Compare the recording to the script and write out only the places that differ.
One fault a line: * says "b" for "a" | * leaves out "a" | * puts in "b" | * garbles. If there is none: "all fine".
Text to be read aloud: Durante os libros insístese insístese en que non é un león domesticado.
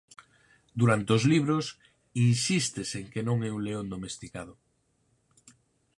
* leaves out "insístese"